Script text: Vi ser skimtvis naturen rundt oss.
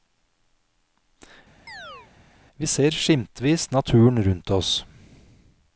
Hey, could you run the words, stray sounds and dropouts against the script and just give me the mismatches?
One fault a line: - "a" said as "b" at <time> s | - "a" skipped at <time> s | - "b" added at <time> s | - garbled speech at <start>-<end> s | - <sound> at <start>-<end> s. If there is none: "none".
- chirp at 1.7-2.1 s